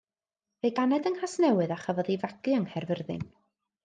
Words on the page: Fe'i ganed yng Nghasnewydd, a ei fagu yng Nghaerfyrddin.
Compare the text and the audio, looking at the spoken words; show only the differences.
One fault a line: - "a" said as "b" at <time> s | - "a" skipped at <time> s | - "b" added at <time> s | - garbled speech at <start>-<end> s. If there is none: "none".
- "chafodd" added at 1.8 s